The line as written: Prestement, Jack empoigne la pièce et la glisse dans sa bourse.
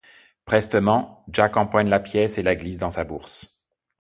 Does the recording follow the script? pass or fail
pass